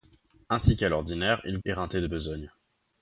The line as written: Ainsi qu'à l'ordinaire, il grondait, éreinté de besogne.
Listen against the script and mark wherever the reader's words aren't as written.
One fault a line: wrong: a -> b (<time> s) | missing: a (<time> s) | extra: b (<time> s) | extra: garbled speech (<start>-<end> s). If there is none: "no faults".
missing: grondait (1.6 s)